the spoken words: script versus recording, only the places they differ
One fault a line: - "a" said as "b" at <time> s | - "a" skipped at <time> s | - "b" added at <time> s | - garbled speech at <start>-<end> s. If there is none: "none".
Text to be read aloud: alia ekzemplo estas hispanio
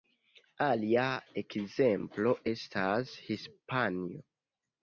none